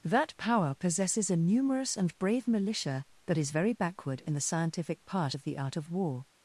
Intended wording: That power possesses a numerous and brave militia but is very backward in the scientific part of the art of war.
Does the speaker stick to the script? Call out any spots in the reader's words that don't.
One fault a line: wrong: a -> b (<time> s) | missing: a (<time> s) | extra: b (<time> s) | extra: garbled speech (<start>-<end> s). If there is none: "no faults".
wrong: but -> that (3.3 s)